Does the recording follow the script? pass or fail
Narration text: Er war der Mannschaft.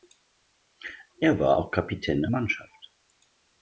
fail